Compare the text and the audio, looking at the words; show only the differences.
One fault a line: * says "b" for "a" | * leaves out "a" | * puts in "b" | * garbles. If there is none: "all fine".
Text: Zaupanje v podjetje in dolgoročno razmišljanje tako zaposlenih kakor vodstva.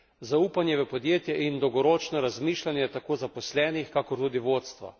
* puts in "tudi"